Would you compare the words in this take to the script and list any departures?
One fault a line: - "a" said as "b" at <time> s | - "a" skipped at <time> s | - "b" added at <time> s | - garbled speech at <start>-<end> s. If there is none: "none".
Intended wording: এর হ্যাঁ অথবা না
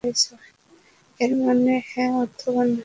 - "মানে" added at 1.4 s